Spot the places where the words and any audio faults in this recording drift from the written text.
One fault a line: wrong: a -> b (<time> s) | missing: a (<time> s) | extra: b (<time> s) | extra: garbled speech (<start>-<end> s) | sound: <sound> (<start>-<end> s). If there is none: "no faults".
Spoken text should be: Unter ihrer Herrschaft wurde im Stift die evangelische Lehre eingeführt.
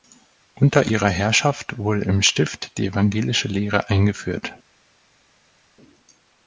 no faults